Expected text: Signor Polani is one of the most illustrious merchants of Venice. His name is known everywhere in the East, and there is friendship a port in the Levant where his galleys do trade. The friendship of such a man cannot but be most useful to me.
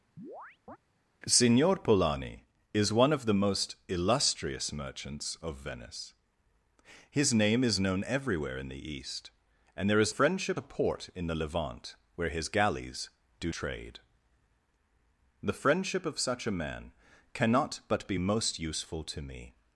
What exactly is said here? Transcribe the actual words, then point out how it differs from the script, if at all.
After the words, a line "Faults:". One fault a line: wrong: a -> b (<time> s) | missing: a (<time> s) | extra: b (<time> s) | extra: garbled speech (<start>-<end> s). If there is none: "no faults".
Signor Polani is one of the most illustrious merchants of Venice. His name is known everywhere in the East, and there is friendship a port in the Levant where his galleys do trade. The friendship of such a man cannot but be most useful to me.
Faults:
no faults